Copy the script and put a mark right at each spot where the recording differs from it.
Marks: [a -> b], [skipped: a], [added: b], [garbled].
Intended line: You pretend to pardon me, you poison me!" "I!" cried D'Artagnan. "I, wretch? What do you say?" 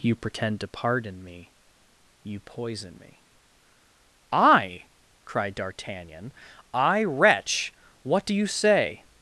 You pretend to pardon me, you poison me!" "I!" cried D'Artagnan. "I, wretch? What do you say?"